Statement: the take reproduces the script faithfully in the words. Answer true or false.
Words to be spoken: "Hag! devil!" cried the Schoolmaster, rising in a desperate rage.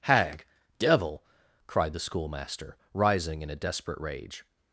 true